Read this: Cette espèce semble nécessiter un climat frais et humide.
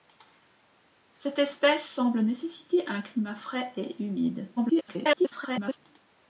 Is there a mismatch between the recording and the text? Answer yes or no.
yes